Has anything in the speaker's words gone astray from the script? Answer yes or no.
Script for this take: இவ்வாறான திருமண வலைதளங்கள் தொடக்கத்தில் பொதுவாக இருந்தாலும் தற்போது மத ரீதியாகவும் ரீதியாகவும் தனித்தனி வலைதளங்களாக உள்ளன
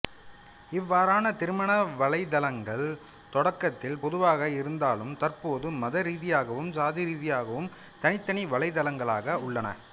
yes